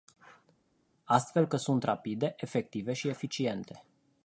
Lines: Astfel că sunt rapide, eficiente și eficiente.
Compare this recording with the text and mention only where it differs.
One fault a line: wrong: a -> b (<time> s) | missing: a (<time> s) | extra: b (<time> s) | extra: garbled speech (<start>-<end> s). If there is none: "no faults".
wrong: eficiente -> efective (2.4 s)